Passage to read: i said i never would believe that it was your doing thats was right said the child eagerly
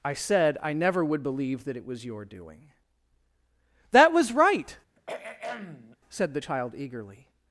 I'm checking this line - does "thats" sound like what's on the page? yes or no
no